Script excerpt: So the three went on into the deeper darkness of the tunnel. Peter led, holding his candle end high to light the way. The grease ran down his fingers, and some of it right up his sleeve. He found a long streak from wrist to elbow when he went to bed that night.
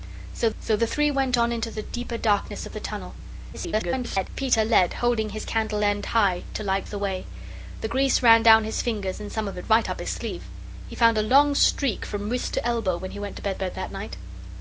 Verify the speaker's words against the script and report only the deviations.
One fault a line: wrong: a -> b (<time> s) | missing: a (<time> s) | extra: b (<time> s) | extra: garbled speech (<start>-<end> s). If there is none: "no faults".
extra: so (0.6 s)
extra: garbled speech (3.5-4.3 s)
extra: bed (13.6 s)